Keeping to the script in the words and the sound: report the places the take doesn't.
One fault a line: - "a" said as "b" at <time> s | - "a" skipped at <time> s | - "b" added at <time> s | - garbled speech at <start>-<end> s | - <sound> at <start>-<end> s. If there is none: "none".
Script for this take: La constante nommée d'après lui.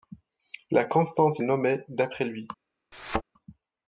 - thud at 2.9-3.2 s